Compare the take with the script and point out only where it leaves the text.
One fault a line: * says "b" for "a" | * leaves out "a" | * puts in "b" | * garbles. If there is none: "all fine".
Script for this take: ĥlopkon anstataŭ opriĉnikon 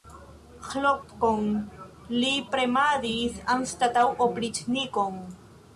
* puts in "li premadis"